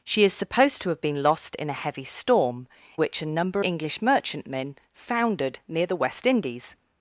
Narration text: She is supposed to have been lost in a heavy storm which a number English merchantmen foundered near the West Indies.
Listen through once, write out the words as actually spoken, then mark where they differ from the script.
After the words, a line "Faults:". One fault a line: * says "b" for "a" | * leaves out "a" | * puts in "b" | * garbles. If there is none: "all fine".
She is supposed to have been lost in a heavy storm which a number English merchantmen foundered near the West Indies.
Faults:
all fine